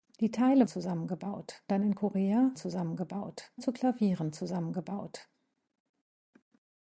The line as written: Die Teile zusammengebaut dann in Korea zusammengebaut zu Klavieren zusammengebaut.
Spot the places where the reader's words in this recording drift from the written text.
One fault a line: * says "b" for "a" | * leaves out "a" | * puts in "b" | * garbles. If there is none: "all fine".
all fine